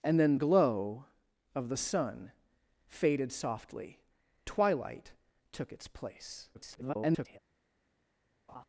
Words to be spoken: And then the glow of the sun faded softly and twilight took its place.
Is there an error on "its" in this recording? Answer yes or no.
no